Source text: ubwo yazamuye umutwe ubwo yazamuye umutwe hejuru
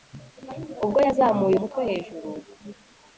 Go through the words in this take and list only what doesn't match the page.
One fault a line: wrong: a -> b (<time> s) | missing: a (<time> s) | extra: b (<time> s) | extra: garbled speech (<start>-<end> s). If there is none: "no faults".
missing: ubwo yazamuye umutwe (1.8 s)